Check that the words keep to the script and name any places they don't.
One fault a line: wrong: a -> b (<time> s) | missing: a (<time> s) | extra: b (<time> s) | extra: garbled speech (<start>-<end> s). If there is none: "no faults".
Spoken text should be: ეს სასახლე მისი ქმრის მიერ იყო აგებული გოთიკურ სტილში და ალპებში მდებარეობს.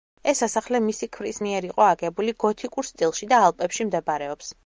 no faults